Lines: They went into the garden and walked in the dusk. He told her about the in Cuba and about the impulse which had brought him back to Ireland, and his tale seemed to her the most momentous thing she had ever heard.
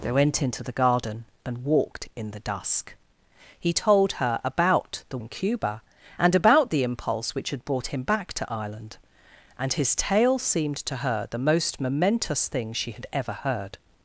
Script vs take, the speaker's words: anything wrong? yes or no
no